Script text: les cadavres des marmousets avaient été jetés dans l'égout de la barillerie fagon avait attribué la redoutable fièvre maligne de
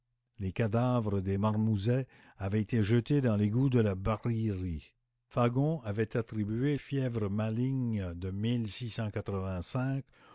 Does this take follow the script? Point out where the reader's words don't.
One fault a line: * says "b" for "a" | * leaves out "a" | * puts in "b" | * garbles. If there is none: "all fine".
* leaves out "la redoutable"